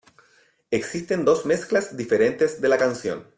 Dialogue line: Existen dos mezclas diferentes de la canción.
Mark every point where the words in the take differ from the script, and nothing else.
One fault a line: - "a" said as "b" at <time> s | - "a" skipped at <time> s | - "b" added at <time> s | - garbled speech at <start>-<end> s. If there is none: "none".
none